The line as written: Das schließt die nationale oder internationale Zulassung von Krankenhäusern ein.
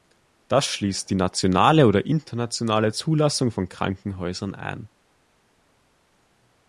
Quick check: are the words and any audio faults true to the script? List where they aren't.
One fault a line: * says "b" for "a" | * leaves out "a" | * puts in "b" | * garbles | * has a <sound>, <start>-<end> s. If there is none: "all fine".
all fine